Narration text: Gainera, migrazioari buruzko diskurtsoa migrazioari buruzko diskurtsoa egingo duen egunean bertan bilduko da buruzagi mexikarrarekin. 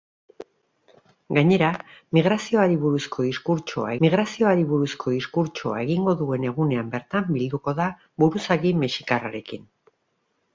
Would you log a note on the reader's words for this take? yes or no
no